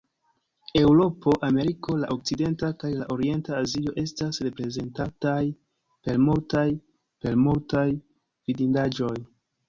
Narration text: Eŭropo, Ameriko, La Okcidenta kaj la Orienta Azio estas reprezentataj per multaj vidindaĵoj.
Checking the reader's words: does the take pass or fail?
fail